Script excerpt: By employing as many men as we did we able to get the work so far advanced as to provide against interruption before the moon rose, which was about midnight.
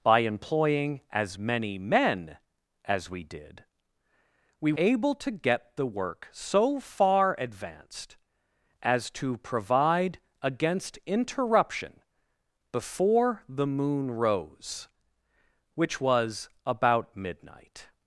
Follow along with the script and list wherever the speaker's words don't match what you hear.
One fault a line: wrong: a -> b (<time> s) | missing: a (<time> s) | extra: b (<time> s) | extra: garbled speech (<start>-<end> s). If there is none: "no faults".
no faults